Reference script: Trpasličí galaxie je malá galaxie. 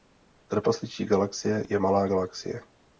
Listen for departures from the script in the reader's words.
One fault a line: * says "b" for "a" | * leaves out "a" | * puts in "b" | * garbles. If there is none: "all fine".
all fine